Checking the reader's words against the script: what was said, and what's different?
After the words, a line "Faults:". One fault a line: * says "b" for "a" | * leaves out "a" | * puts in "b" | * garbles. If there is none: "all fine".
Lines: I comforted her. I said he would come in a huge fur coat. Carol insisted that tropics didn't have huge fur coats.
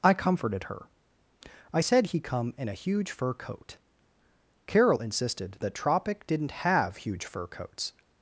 I comforted her. I said he come in a huge fur coat. Carol insisted that tropic didn't have huge fur coats.
Faults:
* leaves out "would"
* says "tropic" for "tropics"